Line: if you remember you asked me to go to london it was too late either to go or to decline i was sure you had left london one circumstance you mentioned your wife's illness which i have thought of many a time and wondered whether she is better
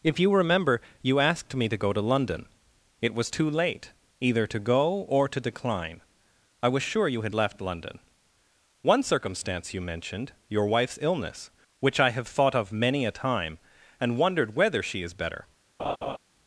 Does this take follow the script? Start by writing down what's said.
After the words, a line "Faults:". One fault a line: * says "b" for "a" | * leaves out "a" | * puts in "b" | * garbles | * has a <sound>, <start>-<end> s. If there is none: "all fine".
if you remember you asked me to go to london it was too late either to go or to decline i was sure you had left london one circumstance you mentioned your wife's illness which i have thought of many a time and wondered whether she is better
Faults:
* has a laugh, 15.8-16.2 s